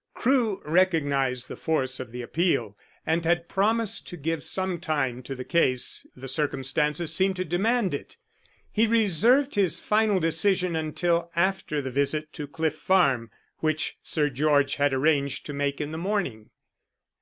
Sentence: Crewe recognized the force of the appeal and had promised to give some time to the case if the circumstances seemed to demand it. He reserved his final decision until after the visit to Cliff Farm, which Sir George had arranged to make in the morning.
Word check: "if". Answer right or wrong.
wrong